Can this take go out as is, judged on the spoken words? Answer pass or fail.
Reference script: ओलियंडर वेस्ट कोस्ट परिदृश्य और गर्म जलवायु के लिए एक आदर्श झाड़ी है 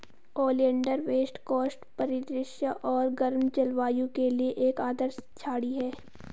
pass